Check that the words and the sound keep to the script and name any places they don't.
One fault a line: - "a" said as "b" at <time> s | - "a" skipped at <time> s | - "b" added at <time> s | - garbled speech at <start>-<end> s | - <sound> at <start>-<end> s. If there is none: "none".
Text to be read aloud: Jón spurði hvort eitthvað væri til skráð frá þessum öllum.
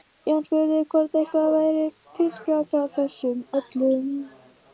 none